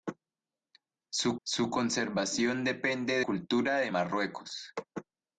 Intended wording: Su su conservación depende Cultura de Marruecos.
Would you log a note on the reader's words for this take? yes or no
no